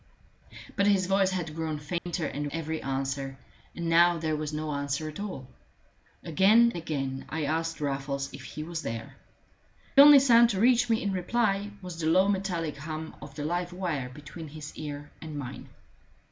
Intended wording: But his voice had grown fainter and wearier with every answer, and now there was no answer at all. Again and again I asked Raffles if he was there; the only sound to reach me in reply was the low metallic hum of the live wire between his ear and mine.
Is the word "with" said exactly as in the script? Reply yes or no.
no